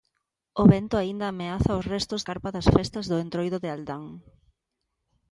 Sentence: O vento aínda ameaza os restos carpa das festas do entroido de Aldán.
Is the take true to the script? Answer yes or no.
yes